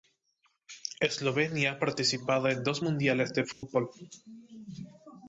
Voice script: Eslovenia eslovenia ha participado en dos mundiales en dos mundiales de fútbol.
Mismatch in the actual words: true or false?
true